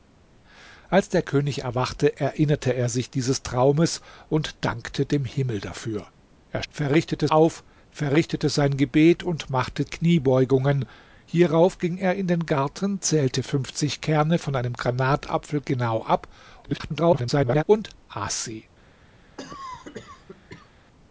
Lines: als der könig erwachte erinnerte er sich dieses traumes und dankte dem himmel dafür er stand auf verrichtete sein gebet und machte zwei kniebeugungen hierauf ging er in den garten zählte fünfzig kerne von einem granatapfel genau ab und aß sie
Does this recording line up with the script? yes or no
no